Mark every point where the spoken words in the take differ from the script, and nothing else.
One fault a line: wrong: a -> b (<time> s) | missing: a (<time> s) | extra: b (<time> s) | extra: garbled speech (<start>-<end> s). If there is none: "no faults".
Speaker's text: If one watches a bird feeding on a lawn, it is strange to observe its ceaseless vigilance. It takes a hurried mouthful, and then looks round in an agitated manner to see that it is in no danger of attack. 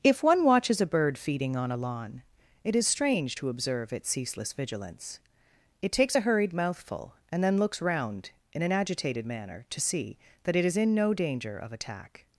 no faults